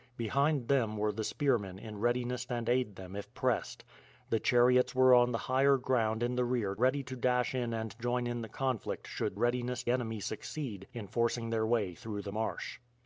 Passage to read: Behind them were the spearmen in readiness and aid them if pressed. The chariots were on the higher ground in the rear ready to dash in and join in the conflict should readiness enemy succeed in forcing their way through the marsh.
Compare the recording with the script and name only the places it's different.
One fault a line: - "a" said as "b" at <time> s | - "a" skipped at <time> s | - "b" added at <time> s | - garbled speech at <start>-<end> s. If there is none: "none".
none